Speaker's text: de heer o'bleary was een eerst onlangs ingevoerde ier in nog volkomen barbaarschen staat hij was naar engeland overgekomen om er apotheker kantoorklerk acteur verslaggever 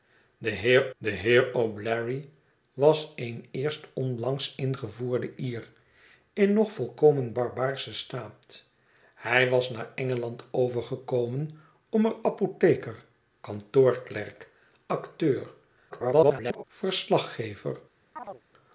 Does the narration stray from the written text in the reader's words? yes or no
yes